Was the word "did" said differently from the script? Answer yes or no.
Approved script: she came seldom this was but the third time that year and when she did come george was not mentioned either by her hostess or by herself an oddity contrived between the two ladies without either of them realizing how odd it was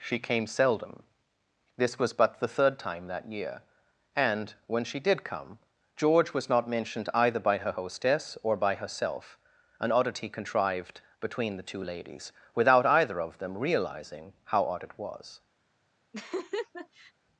no